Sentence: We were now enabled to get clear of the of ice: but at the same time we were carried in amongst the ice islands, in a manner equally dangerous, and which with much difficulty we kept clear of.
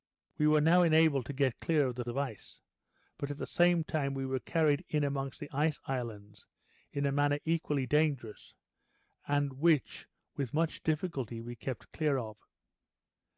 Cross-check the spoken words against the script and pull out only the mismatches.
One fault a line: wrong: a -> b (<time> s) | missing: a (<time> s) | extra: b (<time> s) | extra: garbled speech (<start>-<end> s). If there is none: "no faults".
no faults